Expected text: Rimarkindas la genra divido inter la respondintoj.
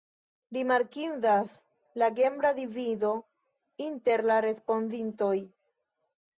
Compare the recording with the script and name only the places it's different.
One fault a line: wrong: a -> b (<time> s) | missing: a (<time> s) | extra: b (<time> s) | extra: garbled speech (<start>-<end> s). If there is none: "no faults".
no faults